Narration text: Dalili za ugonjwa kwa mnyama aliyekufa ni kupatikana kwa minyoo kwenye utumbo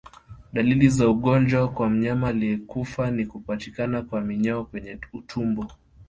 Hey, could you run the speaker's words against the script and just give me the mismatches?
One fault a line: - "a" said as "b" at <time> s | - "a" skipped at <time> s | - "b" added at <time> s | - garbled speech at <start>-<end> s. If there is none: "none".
none